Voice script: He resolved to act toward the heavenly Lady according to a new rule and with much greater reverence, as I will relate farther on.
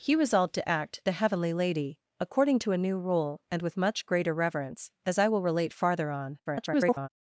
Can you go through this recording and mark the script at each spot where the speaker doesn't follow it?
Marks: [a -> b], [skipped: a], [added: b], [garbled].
He resolved to act [skipped: toward] the heavenly Lady according to a new rule and with much greater reverence, as I will relate farther on. [garbled]